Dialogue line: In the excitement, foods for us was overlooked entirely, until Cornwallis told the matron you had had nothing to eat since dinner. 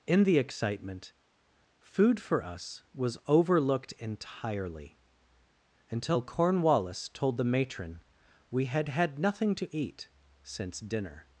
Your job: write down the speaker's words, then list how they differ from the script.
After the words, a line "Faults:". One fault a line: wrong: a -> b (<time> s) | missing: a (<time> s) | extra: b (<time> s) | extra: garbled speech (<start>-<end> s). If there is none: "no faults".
In the excitement, food for us was overlooked entirely, until Cornwallis told the matron we had had nothing to eat since dinner.
Faults:
wrong: foods -> food (1.8 s)
wrong: you -> we (8.5 s)